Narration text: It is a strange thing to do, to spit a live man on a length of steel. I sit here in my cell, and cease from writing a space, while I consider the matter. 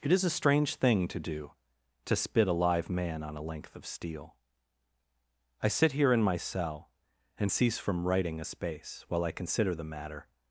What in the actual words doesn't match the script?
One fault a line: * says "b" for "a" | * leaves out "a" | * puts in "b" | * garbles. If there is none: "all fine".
all fine